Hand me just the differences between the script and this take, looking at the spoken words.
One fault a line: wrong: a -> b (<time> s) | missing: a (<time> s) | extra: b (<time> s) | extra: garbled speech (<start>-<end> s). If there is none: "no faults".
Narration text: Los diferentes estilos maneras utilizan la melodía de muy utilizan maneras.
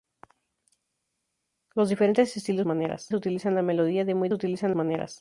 no faults